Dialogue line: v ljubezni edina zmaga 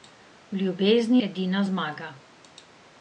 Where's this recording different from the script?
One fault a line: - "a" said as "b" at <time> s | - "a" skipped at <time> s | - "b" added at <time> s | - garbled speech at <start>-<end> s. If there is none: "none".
none